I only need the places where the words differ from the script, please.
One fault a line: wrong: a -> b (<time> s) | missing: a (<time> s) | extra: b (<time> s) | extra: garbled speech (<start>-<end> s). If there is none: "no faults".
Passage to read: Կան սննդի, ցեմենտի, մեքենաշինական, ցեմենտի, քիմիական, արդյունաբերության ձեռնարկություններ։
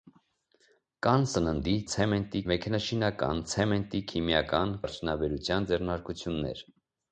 no faults